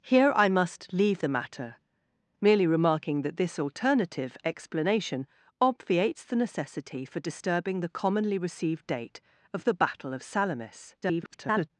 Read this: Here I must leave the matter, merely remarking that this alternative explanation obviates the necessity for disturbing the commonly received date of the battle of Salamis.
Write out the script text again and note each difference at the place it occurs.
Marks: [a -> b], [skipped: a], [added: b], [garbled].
Here I must leave the matter, merely remarking that this alternative explanation obviates the necessity for disturbing the commonly received date of the battle of Salamis. [garbled]